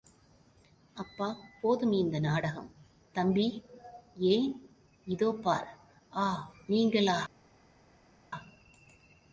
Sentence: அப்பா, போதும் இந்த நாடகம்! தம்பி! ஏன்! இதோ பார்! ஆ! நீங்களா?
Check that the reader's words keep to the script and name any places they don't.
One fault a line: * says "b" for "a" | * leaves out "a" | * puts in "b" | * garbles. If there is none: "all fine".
all fine